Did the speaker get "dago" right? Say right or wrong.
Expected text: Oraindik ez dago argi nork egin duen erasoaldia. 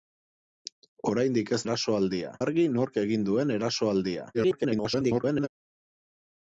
wrong